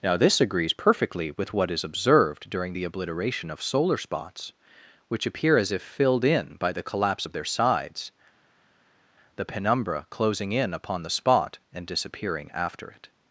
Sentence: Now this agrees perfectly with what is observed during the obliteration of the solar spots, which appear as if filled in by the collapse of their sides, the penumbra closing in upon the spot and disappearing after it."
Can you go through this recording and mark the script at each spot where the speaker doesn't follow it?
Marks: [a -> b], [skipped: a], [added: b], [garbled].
Now this agrees perfectly with what is observed during the obliteration of [skipped: the] solar spots, which appear as if filled in by the collapse of their sides, the penumbra closing in upon the spot and disappearing after it."